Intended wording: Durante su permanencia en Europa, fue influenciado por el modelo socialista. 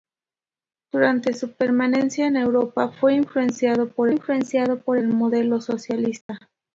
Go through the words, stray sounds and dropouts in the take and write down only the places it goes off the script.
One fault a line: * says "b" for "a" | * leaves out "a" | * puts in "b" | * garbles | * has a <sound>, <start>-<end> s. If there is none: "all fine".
* puts in "influenciado por"
* has a dropout, 6.2-6.3 s